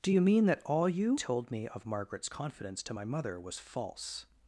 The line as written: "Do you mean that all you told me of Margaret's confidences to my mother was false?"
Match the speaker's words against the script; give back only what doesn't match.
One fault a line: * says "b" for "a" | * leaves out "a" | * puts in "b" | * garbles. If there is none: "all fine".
* says "confidence" for "confidences"